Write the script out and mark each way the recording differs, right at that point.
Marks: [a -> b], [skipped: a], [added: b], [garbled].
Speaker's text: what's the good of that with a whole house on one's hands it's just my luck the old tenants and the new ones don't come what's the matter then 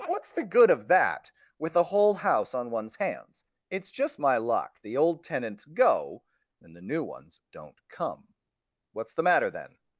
what's the good of that with a whole house on one's hands it's just my luck the old tenants [added: go] and the new ones don't come what's the matter then